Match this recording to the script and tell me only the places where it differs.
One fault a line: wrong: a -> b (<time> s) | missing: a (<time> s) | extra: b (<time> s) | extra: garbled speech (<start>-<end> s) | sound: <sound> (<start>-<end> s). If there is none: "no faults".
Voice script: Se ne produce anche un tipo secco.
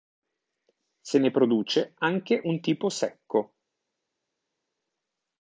no faults